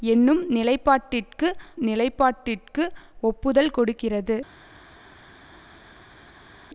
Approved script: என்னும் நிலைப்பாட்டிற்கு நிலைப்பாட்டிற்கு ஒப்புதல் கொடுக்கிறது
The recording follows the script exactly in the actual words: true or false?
true